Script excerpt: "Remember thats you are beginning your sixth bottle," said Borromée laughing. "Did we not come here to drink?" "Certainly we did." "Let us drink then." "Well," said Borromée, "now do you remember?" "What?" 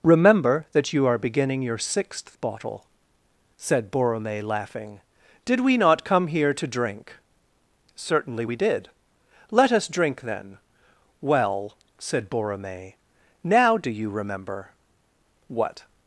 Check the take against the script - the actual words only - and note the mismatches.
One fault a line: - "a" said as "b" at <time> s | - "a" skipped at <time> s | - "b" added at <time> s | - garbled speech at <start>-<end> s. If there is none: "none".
- "thats" said as "that" at 0.7 s